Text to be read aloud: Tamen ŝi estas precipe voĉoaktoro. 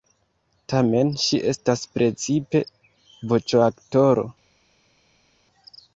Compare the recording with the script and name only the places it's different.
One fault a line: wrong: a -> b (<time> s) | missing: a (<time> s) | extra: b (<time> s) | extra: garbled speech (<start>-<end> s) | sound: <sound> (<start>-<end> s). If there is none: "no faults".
no faults